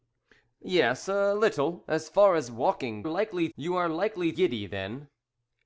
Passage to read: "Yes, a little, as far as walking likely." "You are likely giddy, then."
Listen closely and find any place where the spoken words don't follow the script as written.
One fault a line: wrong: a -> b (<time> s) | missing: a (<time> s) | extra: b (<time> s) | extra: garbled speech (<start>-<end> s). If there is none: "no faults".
no faults